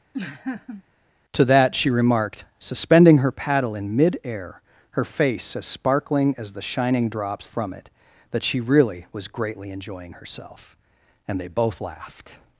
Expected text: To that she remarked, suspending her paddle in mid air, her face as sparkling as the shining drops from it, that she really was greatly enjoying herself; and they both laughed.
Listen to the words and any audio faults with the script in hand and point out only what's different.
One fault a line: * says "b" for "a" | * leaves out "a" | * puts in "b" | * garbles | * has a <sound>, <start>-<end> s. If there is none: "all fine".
* has a laugh, 0.1-0.8 s